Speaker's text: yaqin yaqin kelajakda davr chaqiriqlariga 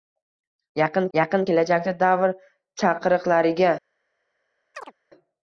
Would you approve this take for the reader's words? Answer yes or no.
yes